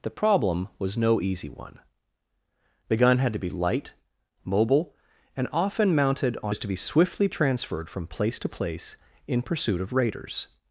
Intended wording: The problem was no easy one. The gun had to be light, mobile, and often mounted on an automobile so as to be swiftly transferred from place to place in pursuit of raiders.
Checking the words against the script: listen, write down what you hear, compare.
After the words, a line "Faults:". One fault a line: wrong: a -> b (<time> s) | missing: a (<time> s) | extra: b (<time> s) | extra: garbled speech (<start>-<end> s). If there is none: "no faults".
The problem was no easy one. The gun had to be light, mobile, and often mounted on as to be swiftly transferred from place to place in pursuit of raiders.
Faults:
missing: an automobile so (6.5 s)